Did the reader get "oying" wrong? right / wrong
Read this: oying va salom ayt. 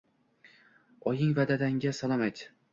right